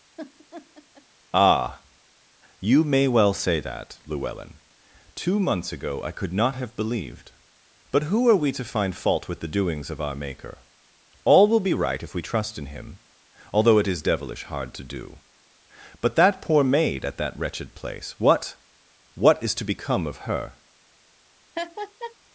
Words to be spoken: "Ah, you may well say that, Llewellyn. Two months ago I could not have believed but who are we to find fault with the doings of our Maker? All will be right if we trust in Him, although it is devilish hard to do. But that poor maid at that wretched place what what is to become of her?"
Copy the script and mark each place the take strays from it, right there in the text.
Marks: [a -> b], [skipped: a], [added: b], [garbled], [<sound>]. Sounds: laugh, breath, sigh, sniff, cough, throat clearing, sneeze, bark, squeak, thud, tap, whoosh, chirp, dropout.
[laugh] "Ah, you may well say that, Llewellyn. Two months ago I could not have believed but who are we to find fault with the doings of our Maker? All will be right if we trust in Him, although it is devilish hard to do. But that poor maid at that wretched place what what is to become of her?" [laugh]